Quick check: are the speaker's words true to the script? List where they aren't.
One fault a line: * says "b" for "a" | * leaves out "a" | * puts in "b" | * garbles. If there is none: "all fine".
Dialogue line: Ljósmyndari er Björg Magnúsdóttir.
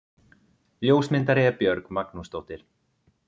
all fine